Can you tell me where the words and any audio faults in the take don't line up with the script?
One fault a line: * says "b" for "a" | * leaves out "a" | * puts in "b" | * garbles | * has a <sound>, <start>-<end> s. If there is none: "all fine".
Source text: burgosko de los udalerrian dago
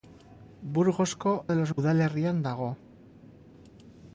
all fine